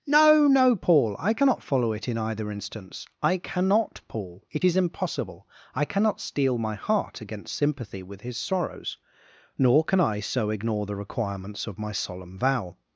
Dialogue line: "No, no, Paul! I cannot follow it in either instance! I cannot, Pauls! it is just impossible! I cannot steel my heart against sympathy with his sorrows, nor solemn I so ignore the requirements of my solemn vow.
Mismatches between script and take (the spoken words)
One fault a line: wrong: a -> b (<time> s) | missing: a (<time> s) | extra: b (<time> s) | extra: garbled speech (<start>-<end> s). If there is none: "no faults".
wrong: Pauls -> Paul (4.1 s)
missing: just (4.8 s)
wrong: solemn -> can (9.8 s)